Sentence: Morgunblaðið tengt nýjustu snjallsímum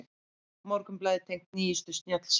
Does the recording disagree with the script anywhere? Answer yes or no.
no